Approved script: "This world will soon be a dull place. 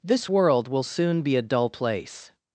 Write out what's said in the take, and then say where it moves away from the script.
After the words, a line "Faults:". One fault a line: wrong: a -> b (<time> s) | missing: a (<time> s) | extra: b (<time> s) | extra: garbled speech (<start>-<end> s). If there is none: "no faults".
"This world will soon be a dull place.
Faults:
no faults